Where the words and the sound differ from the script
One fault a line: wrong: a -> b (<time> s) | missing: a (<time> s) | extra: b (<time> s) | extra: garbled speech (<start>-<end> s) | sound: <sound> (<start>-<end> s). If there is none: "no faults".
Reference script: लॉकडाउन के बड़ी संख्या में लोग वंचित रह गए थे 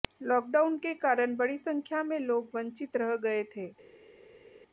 extra: कारण (0.9 s)